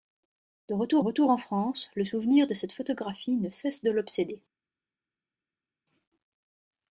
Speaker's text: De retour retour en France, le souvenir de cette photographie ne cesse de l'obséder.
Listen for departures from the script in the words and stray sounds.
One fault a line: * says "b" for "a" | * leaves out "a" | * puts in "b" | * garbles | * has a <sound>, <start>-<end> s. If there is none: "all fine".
all fine